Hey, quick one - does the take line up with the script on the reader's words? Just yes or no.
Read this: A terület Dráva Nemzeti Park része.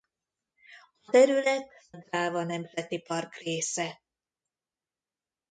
yes